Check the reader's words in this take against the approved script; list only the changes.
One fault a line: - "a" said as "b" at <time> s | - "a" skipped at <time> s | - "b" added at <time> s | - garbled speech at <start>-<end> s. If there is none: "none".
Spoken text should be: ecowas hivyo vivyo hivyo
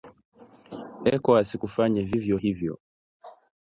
- "hivyo" said as "kufanya" at 1.6 s